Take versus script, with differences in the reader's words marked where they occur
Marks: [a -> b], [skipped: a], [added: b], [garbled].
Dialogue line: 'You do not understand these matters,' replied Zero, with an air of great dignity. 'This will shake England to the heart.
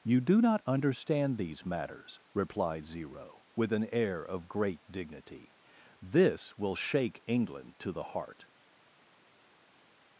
'You do not understand these matters,' replied Zero, with an air of great dignity. 'This will shake England to the heart.